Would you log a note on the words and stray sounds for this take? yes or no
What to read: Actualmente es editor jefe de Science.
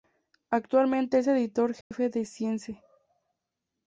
yes